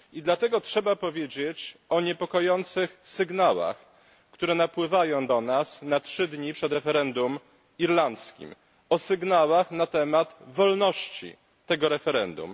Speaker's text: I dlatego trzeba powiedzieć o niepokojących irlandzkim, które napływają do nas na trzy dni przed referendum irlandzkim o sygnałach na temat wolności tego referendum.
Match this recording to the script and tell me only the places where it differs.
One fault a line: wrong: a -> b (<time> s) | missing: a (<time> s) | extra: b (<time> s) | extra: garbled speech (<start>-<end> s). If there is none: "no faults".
wrong: irlandzkim -> sygnałach (3.0 s)